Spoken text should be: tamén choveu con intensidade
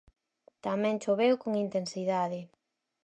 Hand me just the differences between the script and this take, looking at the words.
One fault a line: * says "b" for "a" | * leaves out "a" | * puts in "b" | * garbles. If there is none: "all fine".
all fine